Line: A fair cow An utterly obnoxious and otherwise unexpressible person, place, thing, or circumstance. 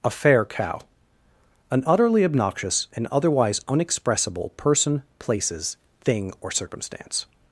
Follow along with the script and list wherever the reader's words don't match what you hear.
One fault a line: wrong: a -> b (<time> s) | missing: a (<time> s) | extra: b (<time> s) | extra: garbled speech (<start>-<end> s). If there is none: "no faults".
wrong: place -> places (5.2 s)